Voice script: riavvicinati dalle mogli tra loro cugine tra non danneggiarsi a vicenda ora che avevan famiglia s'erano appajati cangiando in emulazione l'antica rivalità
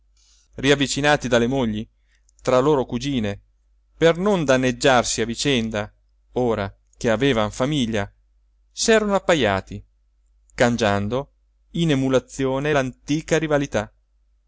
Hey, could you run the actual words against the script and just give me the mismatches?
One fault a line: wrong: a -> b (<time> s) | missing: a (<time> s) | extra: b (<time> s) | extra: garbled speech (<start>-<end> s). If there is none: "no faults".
wrong: tra -> per (4.0 s)